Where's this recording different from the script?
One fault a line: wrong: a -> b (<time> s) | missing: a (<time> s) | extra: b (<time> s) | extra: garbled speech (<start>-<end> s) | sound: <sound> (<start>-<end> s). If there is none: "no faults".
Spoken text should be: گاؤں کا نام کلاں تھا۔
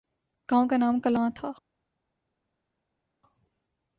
no faults